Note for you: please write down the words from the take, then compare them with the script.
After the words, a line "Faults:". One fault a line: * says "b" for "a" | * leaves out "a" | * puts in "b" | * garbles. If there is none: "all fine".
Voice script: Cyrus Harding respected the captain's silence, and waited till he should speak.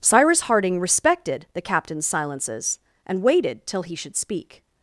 Cyrus Harding respected the captain's silences, and waited till he should speak.
Faults:
* says "silences" for "silence"